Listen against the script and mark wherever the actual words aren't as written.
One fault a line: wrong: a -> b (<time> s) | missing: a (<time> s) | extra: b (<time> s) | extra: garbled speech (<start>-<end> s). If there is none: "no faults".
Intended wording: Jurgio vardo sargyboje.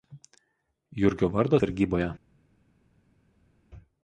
no faults